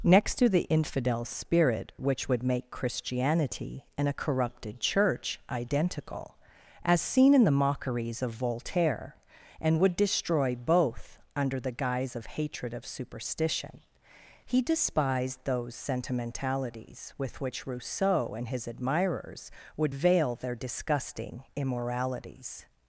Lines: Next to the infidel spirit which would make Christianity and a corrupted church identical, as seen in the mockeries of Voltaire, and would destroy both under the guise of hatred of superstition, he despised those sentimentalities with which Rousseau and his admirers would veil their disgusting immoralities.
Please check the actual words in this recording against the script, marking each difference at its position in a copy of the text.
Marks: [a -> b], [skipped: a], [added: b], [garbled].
Next to the infidel spirit which would make Christianity and a corrupted church identical, as seen in the mockeries of Voltaire, and would destroy both under the guise of hatred of superstition, he despised those sentimentalities with which Rousseau and his admirers would veil their disgusting immoralities.